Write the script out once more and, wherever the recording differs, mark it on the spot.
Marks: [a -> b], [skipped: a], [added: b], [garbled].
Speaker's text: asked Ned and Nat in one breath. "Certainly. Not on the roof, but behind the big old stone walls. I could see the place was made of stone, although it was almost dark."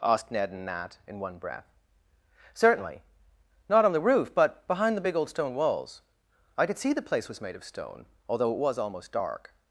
asked Ned and Nat in one breath. "Certainly. Not on the roof, but behind the big old stone walls. I could see the place was made of stone, although it was almost dark."